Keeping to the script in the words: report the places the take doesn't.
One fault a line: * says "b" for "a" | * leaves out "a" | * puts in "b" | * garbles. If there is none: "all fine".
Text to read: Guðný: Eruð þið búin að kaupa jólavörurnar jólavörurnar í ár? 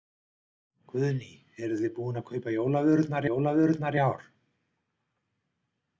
all fine